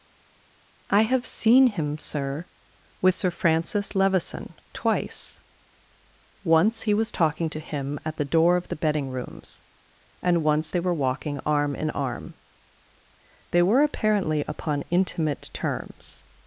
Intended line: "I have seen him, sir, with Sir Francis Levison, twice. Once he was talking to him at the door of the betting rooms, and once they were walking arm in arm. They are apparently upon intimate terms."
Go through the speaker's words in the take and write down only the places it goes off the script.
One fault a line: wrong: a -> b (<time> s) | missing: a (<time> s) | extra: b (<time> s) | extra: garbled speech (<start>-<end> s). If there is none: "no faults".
wrong: are -> were (13.6 s)